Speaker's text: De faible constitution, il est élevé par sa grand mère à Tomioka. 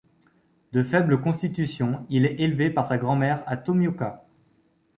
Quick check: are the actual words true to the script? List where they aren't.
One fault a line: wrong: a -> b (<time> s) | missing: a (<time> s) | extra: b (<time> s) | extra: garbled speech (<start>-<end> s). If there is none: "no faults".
no faults